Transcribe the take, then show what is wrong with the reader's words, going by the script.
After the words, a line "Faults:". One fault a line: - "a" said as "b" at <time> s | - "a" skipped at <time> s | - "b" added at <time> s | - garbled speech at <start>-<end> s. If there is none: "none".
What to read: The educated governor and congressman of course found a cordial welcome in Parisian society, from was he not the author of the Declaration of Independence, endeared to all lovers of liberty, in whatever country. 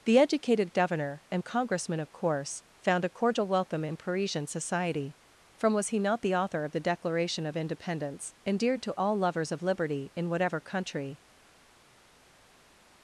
The educated governor and congressman of course found a cordial welcome in Parisian society, from was he not the author of the Declaration of Independence, endeared to all lovers of liberty, in whatever country.
Faults:
none